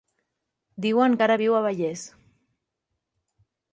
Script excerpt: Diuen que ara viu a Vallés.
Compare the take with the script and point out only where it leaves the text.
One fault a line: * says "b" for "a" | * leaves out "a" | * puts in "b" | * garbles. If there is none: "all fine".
all fine